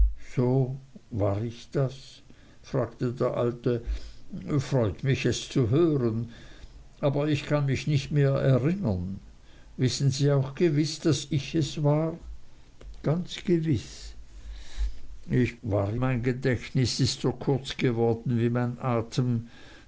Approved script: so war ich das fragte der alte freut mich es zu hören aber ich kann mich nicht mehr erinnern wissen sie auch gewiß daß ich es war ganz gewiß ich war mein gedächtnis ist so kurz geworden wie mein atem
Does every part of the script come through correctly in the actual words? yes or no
yes